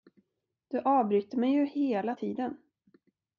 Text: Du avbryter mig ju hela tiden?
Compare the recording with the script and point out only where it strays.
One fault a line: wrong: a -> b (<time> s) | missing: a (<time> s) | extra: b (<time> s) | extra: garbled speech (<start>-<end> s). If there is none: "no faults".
no faults